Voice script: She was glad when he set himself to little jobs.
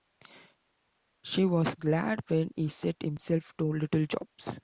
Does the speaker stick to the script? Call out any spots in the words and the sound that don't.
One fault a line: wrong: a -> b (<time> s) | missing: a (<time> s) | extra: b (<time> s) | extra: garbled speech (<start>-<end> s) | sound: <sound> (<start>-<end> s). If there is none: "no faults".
no faults